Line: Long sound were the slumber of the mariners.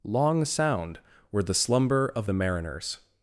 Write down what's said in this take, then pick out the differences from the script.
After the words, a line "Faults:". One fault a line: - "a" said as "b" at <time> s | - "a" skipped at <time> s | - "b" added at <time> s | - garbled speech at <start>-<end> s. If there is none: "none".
Long sound were the slumber of the mariners.
Faults:
none